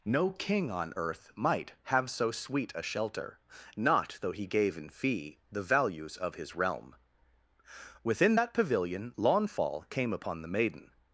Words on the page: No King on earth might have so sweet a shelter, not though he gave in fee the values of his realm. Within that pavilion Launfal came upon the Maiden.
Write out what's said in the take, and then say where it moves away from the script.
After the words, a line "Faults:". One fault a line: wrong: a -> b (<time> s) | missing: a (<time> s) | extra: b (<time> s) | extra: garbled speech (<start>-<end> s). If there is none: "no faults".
No King on earth might have so sweet a shelter, not though he gave in fee the values of his realm. Within that pavilion Launfal came upon the Maiden.
Faults:
no faults